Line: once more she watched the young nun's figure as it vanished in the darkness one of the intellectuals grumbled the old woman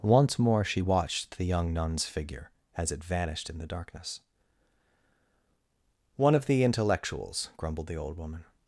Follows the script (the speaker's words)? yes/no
yes